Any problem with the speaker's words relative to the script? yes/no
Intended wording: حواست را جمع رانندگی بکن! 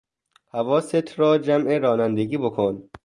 no